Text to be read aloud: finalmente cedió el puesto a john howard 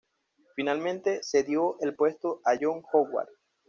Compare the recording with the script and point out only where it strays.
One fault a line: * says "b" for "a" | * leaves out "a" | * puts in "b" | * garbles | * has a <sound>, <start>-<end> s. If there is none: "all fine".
all fine